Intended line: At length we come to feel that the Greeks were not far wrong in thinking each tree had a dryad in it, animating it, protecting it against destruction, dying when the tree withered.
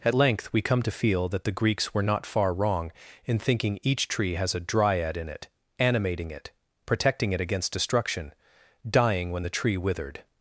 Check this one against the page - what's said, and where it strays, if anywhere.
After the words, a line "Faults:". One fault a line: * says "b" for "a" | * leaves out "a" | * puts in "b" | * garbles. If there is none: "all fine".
At length we come to feel that the Greeks were not far wrong in thinking each tree has a dryad in it, animating it, protecting it against destruction, dying when the tree withered.
Faults:
* says "has" for "had"